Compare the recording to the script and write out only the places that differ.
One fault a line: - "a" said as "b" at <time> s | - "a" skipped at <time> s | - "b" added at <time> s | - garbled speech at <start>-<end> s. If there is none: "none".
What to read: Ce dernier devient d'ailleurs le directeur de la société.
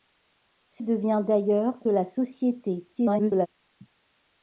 - "dernier" skipped at 0.8 s
- "le directeur de" skipped at 1.7 s
- garbled speech at 2.9-3.5 s